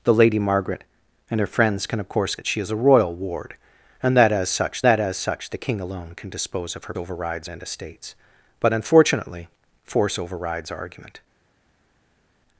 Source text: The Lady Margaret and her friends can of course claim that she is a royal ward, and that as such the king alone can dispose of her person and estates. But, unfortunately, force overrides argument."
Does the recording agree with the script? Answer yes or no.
no